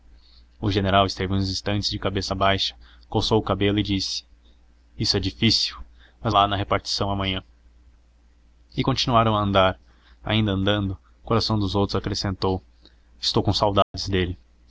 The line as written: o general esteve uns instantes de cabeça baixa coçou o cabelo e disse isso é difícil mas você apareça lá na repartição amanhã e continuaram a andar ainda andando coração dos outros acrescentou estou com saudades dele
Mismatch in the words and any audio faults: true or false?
true